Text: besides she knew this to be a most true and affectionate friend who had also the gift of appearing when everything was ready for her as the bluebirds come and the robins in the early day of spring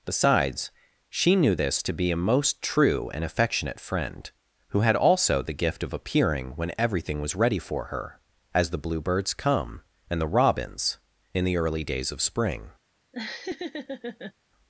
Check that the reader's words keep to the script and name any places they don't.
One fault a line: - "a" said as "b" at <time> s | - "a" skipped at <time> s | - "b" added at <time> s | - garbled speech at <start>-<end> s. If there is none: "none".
- "day" said as "days" at 11.8 s